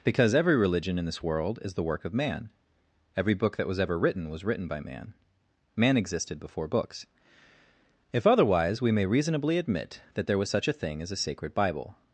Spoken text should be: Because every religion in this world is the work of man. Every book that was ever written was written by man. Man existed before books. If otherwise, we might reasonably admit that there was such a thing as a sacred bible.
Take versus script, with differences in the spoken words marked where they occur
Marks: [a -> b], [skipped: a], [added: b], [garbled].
Because every religion in this world is the work of man. Every book that was ever written was written by man. Man existed before books. If otherwise, we [might -> may] reasonably admit that there was such a thing as a sacred bible.